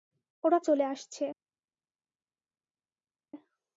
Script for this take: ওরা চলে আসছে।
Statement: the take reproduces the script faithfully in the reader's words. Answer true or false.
true